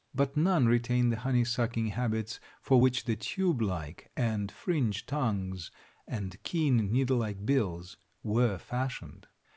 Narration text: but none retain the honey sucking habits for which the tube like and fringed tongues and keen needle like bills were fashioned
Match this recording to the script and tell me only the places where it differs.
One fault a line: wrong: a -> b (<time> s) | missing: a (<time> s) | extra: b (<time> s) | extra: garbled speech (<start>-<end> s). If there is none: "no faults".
no faults